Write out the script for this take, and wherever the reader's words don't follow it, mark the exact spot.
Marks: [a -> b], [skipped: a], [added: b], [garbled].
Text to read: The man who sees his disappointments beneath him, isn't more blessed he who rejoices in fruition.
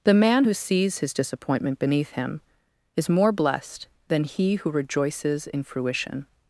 The man who sees his [disappointments -> disappointment] beneath him, [isn't -> is] more blessed [added: than] he who rejoices in fruition.